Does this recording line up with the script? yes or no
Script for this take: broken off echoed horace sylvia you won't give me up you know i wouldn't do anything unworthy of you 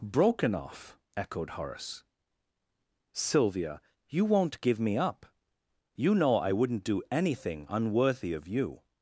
yes